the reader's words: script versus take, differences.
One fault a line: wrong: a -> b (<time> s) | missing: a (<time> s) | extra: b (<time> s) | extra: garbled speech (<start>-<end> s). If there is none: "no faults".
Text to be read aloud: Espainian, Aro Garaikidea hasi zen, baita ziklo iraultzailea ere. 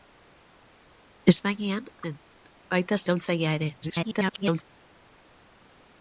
missing: Aro Garaikidea hasi (1.9 s)
missing: ziklo (3.0 s)
extra: garbled speech (3.8-4.6 s)